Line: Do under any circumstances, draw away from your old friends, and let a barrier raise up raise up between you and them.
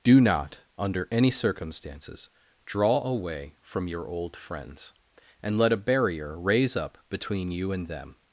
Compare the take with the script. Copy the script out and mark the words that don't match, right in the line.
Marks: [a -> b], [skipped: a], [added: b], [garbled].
Do [added: not] under any circumstances, draw away from your old friends, and let a barrier raise up [skipped: raise up] between you and them.